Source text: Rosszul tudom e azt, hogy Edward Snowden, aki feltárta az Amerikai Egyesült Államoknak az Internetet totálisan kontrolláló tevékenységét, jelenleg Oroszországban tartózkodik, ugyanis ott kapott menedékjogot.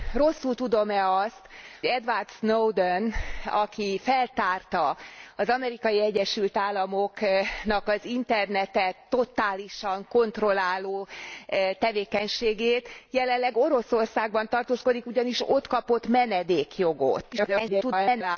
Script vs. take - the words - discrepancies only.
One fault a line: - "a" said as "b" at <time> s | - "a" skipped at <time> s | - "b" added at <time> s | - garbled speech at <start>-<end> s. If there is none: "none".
- "hogy" skipped at 1.4 s
- garbled speech at 17.3-18.4 s